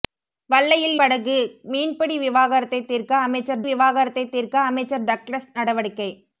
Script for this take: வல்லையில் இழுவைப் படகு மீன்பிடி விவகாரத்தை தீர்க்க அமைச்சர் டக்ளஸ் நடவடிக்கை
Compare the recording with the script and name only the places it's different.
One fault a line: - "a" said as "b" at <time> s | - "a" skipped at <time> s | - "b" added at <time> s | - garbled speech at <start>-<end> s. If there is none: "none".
- "இழுவைப்" skipped at 0.9 s
- "விவகாரத்தை தீர்க்க அமைச்சர்" added at 3.6 s